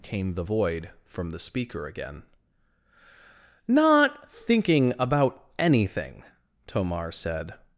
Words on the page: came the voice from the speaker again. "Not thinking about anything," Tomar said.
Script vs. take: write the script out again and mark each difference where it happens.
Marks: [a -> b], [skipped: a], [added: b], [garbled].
came the [voice -> void] from the speaker again. "Not thinking about anything," Tomar said.